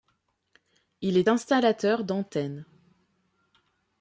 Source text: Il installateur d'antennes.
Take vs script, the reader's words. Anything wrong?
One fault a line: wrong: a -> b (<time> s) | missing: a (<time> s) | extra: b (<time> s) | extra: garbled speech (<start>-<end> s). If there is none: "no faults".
extra: est (1.1 s)